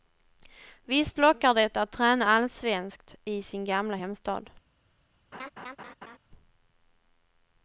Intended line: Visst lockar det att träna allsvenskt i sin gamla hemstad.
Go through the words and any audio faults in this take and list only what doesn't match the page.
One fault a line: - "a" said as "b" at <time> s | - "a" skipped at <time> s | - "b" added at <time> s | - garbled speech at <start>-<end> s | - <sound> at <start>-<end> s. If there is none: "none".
- laugh at 5.3-6.2 s